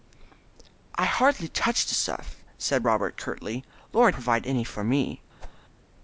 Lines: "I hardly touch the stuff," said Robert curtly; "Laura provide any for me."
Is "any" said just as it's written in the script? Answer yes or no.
yes